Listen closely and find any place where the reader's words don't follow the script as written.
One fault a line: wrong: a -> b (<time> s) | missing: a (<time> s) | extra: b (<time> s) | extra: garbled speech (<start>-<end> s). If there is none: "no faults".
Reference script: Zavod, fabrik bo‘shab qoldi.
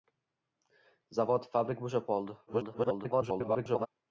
extra: garbled speech (2.5-3.9 s)